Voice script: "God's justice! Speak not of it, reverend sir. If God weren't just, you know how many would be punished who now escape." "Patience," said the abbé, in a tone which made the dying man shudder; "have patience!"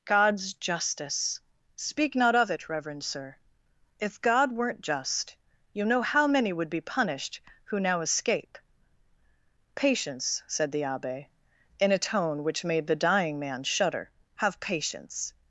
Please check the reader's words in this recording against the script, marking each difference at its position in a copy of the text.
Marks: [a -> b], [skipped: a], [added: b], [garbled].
"God's justice! Speak not of it, reverend sir. If God weren't just, you know how many would be punished who now escape." "Patience," said the abbé, in a tone which made the dying man shudder; "have patience!"